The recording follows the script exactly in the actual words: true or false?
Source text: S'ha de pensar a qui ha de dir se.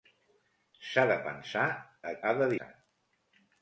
false